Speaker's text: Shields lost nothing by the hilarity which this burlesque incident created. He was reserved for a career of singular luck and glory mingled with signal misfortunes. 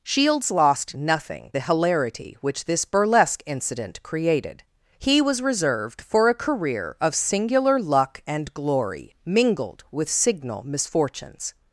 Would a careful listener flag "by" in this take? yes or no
yes